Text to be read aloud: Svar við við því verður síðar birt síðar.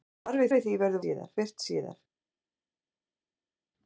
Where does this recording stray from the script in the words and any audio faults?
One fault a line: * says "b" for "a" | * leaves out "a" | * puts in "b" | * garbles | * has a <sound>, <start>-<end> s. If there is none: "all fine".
all fine